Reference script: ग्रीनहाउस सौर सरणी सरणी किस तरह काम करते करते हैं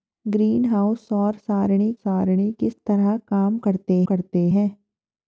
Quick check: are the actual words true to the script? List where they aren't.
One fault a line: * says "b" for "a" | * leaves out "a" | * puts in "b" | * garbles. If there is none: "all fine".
all fine